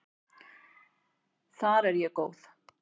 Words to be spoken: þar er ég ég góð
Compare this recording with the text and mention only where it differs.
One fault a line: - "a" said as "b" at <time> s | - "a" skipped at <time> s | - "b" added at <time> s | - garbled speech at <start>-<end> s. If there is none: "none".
- "ég" skipped at 2.2 s